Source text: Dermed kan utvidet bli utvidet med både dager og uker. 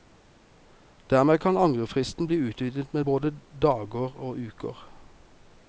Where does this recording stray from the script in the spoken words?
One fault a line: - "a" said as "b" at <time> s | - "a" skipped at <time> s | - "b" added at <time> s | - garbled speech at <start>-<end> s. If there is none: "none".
- "utvidet" said as "angrefristen" at 1.6 s